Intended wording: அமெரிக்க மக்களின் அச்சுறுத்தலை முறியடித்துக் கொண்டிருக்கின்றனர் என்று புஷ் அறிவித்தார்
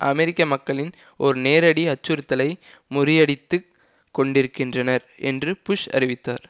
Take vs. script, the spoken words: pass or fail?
fail